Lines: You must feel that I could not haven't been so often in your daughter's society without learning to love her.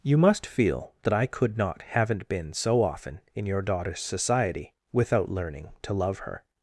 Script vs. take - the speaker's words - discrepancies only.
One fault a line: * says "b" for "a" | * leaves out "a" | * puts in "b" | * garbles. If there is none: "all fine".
all fine